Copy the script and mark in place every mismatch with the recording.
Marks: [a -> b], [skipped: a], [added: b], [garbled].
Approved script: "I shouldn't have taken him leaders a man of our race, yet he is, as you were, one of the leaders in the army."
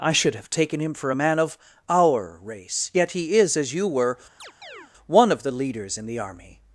"I [shouldn't -> should] have taken him [leaders -> for] a man of our race, yet he is, as you were, one of the leaders in the army."